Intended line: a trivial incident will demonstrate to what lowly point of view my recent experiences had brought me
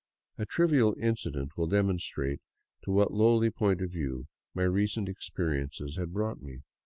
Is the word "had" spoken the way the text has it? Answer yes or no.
yes